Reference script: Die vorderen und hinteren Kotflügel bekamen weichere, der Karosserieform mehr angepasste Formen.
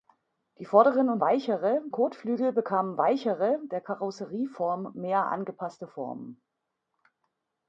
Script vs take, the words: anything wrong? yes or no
yes